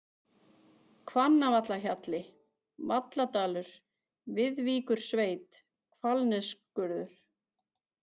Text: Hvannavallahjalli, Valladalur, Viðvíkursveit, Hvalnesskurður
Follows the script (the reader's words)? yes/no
yes